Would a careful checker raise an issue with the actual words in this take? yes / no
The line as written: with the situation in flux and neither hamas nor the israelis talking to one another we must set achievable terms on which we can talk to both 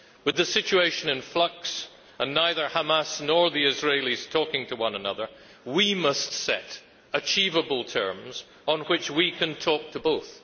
no